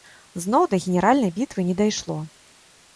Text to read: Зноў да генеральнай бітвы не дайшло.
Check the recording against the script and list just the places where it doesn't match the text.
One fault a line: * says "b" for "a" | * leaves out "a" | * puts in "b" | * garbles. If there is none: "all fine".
all fine